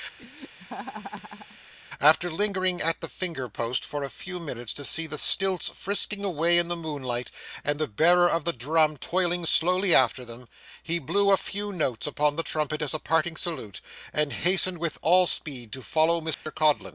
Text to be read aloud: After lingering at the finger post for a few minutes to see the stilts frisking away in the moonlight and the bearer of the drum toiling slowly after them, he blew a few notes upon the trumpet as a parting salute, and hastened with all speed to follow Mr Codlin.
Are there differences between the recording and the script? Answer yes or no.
no